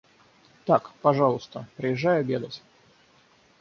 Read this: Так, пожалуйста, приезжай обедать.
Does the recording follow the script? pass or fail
pass